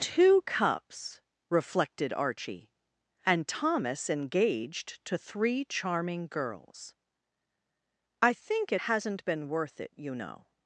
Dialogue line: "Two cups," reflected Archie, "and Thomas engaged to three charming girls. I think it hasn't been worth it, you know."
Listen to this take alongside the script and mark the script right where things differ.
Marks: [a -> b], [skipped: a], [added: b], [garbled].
"Two cups," reflected Archie, "and Thomas engaged to three charming girls. I think it hasn't been worth it, you know."